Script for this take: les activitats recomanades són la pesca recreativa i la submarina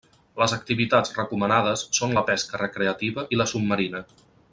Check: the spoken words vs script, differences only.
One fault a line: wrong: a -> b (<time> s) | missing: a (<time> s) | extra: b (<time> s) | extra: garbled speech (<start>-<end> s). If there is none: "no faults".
no faults